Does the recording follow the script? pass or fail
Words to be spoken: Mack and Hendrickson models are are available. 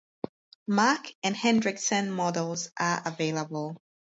fail